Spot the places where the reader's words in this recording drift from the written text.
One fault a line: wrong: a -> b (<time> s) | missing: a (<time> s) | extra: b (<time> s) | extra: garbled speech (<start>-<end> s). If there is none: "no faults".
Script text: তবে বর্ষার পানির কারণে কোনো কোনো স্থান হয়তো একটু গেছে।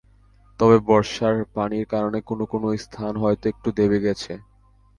extra: দেবে (3.8 s)